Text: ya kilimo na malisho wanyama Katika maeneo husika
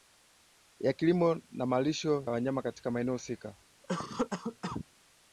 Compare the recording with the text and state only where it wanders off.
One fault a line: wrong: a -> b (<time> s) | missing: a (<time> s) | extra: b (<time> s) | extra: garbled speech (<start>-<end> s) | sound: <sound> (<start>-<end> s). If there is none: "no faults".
sound: cough (3.8-4.8 s)